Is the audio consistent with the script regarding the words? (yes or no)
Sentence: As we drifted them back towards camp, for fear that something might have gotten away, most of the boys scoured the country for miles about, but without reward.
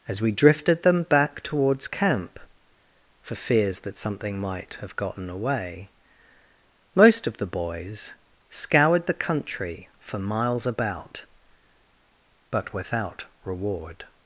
no